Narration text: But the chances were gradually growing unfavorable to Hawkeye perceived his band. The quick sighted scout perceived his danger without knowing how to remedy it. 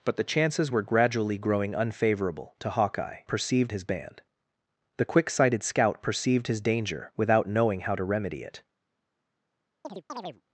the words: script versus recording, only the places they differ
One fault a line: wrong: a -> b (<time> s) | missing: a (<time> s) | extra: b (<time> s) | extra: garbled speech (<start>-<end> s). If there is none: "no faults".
no faults